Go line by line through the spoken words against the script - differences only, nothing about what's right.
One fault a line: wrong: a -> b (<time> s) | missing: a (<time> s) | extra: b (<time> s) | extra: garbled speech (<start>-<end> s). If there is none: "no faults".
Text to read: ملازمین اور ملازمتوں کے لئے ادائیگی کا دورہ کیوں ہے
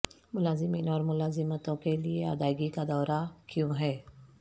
no faults